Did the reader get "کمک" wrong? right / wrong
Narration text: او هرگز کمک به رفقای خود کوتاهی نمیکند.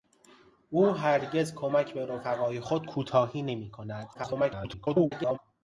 right